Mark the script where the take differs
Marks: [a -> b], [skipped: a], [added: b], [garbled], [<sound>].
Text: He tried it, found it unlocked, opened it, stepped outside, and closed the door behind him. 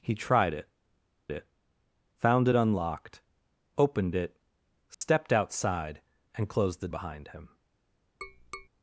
He tried it, [added: it] found it unlocked, opened it, stepped [dropout] outside, and closed the [skipped: door] behind him. [tap]